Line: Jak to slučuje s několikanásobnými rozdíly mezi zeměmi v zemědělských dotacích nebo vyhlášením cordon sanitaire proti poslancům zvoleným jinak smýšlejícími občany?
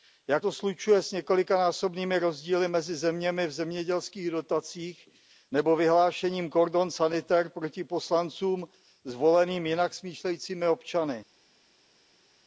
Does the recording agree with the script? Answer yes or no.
yes